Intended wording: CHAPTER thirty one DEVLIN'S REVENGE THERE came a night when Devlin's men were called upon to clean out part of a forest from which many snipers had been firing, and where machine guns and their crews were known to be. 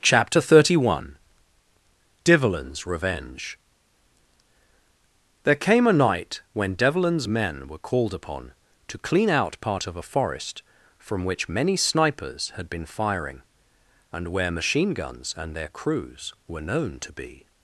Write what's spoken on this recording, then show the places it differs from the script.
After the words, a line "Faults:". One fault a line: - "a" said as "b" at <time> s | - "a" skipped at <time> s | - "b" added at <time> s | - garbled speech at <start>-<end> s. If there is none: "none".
CHAPTER thirty one DEVLIN'S REVENGE THERE came a night when Devlin's men were called upon to clean out part of a forest from which many snipers had been firing, and where machine guns and their crews were known to be.
Faults:
none